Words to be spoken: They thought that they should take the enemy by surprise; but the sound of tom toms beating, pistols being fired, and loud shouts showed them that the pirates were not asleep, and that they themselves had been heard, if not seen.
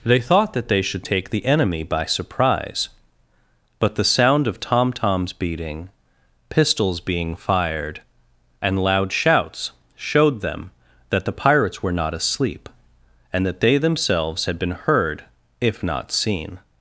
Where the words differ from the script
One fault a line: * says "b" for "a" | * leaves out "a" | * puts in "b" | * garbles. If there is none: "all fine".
all fine